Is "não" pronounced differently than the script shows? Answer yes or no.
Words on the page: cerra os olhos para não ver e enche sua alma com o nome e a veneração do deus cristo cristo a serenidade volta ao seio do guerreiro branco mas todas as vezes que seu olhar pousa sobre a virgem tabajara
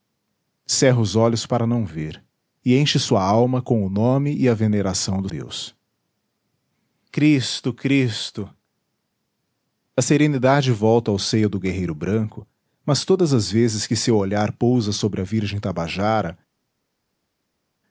no